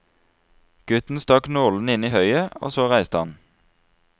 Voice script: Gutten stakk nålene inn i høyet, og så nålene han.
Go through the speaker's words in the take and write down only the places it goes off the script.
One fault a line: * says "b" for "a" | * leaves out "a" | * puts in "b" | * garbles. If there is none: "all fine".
* says "reiste" for "nålene"